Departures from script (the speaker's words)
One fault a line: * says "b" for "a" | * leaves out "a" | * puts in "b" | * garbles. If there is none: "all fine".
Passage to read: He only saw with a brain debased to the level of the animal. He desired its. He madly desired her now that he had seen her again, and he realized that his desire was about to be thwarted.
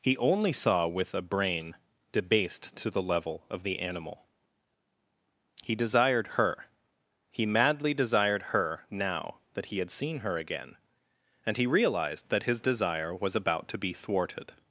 * says "her" for "its"